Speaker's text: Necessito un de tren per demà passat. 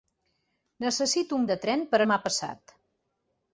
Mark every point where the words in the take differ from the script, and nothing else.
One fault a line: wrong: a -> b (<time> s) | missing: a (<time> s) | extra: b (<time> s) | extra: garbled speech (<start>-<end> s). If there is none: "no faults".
no faults